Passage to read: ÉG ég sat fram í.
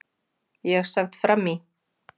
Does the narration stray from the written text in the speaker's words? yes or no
yes